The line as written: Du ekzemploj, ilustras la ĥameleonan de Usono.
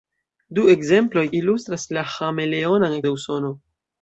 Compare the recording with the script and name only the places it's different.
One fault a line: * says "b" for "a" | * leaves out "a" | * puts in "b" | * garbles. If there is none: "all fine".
all fine